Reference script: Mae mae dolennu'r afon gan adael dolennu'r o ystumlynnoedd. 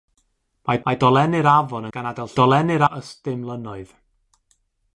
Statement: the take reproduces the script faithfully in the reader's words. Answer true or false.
true